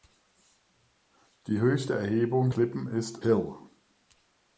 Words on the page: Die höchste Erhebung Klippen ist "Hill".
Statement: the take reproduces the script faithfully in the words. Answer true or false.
true